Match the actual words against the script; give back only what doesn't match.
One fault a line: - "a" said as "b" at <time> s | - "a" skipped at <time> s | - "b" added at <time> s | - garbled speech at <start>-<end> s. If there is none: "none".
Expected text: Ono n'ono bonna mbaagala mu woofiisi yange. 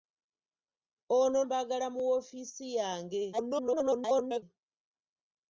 - "n'ono bonna" skipped at 1.4 s
- garbled speech at 3.3-4.4 s